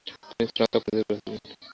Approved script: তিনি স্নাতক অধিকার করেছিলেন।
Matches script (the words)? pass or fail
pass